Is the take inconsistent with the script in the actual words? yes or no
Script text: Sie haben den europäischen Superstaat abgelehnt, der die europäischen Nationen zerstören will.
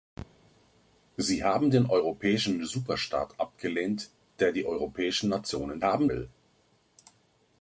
yes